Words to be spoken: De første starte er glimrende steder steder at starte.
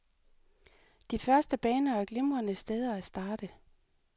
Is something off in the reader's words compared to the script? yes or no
yes